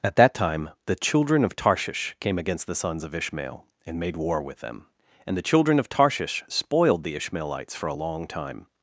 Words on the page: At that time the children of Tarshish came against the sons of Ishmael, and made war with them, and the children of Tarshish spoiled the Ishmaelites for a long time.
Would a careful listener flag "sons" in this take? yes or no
no